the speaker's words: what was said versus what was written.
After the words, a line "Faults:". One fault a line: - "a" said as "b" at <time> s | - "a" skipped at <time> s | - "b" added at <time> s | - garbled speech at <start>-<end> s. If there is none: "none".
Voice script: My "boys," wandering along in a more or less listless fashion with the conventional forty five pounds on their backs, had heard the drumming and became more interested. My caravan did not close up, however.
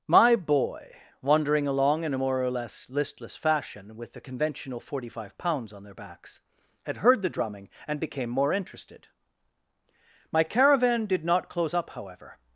My "boy," wandering along in a more or less listless fashion with the conventional forty five pounds on their backs, had heard the drumming and became more interested. My caravan did not close up, however.
Faults:
- "boys" said as "boy" at 0.3 s